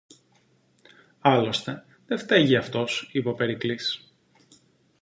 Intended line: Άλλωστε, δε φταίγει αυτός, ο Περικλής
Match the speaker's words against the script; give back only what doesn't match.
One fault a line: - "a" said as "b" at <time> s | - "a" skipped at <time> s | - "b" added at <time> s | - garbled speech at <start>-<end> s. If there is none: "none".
- "είπε" added at 3.1 s